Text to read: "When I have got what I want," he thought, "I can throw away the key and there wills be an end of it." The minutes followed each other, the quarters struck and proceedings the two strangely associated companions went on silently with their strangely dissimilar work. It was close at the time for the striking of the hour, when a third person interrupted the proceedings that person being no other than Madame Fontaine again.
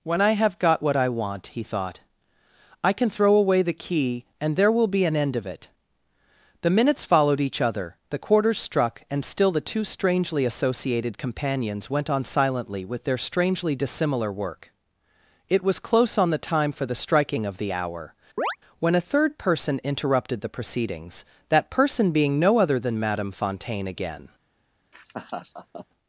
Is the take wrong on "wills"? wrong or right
wrong